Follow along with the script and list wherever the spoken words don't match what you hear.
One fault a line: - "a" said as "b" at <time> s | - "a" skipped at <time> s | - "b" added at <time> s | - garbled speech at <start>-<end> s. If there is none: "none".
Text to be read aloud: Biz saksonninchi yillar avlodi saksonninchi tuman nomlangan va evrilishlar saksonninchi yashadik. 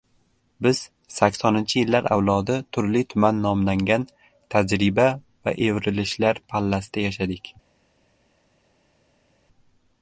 - "saksonninchi" said as "turli" at 2.8 s
- "tajriba" added at 4.5 s
- "saksonninchi" said as "pallasida" at 6.5 s